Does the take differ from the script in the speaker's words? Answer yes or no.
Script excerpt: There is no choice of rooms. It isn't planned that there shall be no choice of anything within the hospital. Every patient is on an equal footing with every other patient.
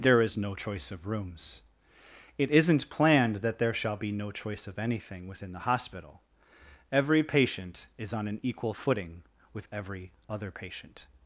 no